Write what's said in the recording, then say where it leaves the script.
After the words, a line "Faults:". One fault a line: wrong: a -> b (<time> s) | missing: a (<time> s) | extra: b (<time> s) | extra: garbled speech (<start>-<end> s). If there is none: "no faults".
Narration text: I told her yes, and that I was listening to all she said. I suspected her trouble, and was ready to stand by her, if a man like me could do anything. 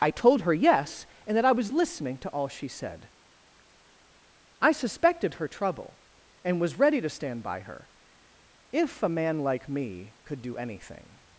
I told her yes, and that I was listening to all she said. I suspected her trouble, and was ready to stand by her, if a man like me could do anything.
Faults:
no faults